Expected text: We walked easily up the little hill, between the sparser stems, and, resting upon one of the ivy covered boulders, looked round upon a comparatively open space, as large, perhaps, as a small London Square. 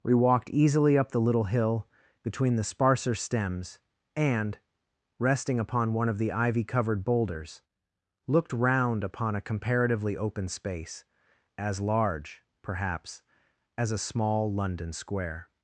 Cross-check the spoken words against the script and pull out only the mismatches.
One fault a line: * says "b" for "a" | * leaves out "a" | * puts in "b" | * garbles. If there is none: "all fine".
all fine